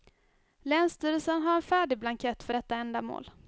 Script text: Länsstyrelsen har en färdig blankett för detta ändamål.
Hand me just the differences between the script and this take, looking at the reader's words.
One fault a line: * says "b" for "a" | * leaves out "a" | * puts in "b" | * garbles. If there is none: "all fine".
all fine